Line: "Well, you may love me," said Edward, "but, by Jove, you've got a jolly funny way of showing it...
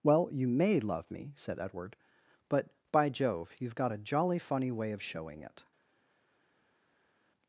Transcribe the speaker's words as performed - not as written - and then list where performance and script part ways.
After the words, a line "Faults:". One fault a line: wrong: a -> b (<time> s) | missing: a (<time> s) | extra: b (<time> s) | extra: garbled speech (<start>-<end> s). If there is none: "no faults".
"Well, you may love me," said Edward, "but, by Jove, you've got a jolly funny way of showing it...
Faults:
no faults